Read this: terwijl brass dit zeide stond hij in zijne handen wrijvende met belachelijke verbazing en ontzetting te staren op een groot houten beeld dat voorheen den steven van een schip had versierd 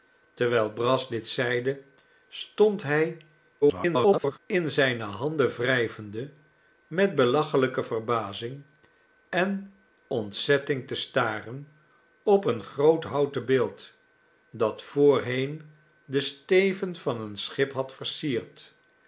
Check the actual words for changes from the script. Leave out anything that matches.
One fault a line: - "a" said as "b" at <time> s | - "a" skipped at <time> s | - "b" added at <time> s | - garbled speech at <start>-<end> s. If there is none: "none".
- garbled speech at 3.6-4.4 s